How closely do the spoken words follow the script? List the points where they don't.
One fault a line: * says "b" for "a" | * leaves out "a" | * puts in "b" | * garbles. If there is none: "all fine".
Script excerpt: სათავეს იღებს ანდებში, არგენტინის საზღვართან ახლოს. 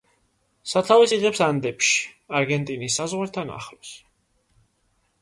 all fine